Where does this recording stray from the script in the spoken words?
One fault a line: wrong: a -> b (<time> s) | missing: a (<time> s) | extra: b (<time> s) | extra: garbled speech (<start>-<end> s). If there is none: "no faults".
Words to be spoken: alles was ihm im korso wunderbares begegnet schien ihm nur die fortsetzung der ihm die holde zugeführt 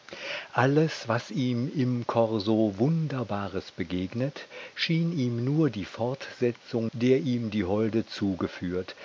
no faults